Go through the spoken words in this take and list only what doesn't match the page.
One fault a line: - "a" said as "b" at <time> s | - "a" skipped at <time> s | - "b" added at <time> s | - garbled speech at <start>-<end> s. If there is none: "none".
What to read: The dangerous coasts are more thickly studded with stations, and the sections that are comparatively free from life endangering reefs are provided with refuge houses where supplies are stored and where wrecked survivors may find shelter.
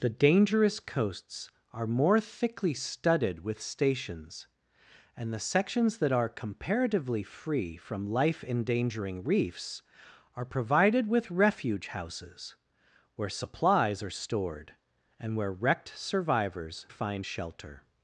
- "may" skipped at 16.9 s